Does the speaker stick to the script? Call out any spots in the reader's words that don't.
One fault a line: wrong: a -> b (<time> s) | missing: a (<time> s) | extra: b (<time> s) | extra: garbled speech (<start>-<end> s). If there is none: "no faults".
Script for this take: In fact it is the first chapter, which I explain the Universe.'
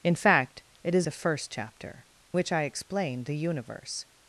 no faults